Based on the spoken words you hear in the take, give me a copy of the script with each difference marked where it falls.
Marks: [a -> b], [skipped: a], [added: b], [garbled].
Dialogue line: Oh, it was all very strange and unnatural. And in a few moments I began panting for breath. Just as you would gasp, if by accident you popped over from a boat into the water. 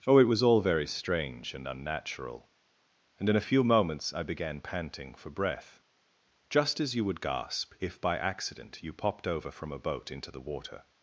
Oh, it was all very strange and unnatural. And in a few moments I began panting for breath. Just as you would gasp, if by accident you popped over from a boat into the water.